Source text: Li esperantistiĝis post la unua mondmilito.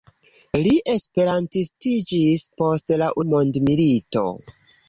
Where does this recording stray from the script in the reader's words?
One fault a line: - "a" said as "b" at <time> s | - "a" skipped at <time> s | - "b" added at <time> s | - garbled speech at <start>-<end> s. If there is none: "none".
- "unua" skipped at 3.1 s